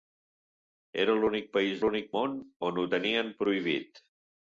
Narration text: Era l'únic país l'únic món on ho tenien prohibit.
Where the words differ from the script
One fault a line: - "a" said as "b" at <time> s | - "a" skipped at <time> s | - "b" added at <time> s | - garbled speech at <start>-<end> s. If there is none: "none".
none